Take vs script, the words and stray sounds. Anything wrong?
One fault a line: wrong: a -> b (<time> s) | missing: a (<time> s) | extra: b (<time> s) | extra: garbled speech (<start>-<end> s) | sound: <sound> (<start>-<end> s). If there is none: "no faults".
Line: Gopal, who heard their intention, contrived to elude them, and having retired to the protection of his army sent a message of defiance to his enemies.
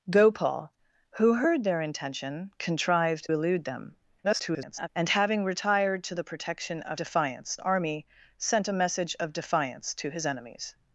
missing: to (3.3 s)
extra: garbled speech (4.2-4.9 s)
wrong: his -> defiance (6.9 s)